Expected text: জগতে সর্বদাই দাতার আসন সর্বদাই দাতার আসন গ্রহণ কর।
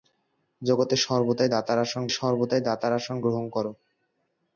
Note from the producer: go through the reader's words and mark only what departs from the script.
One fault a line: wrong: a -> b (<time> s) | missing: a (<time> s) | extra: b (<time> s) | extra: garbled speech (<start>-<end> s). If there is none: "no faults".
no faults